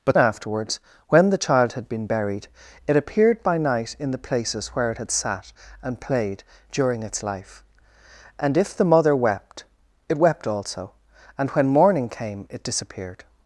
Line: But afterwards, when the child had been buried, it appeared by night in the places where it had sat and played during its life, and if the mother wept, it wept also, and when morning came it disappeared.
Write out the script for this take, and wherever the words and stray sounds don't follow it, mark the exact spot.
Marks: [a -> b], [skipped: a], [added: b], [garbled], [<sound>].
But afterwards, when the child had been buried, it appeared by night in the places where it had sat and played during its life, and if the mother wept, it wept also, and when morning came it disappeared.